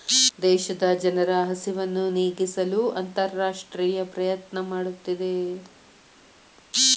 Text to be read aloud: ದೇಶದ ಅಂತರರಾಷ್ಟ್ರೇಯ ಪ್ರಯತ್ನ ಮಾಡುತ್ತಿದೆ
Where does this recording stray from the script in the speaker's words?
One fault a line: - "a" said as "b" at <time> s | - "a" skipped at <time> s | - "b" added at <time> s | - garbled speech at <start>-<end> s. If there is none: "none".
- "ಜನರ ಹಸಿವನ್ನು ನೇಗಿಸಲು" added at 1.0 s